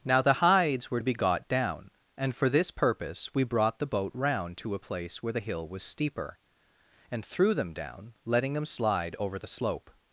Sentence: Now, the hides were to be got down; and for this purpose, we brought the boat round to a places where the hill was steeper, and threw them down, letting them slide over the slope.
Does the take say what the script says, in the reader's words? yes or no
no